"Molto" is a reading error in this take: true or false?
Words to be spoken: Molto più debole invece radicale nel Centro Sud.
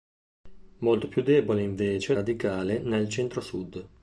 false